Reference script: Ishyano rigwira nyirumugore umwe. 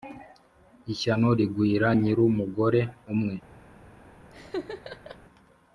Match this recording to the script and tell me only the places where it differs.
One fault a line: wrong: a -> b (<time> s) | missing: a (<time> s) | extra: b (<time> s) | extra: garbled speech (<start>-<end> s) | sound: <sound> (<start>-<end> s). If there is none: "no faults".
sound: laugh (4.3-5.2 s)